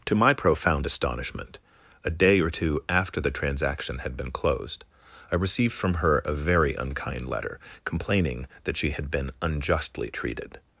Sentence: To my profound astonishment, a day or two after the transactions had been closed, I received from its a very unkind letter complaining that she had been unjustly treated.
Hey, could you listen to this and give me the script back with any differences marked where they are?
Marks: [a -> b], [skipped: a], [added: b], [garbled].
To my profound astonishment, a day or two after the [transactions -> transaction] had been closed, I received from [its -> her] a very unkind letter complaining that she had been unjustly treated.